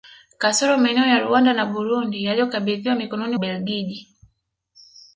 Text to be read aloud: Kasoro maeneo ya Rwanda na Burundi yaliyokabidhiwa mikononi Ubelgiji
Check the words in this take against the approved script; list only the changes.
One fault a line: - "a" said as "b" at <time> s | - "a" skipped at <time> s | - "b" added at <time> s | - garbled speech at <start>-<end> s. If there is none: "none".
none